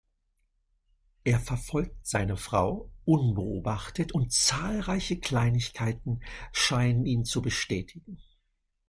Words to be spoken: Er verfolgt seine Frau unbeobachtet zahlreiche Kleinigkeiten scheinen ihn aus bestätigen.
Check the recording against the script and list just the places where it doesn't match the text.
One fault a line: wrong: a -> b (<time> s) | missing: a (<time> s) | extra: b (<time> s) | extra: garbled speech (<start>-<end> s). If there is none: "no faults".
extra: und (4.1 s)
wrong: aus -> zu (7.2 s)